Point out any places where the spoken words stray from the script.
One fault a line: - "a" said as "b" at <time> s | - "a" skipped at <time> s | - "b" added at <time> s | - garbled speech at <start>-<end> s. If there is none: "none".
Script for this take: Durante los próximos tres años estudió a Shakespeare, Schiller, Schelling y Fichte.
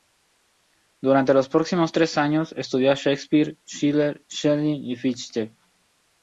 none